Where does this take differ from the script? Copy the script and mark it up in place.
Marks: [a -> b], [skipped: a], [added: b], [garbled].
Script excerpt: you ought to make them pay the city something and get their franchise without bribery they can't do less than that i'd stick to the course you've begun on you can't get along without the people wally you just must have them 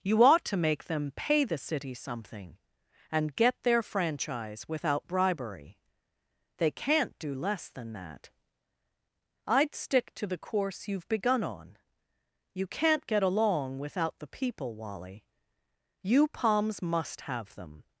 you ought to make them pay the city something and get their franchise without bribery they can't do less than that i'd stick to the course you've begun on you can't get along without the people wally you [just -> palms] must have them